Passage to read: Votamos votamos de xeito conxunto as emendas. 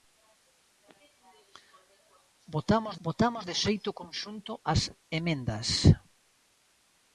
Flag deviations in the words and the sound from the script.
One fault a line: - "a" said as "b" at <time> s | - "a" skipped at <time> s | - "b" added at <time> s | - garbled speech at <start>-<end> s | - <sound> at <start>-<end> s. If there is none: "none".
none